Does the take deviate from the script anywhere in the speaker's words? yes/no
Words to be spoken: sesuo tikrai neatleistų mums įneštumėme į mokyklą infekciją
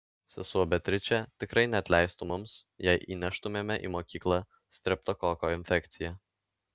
yes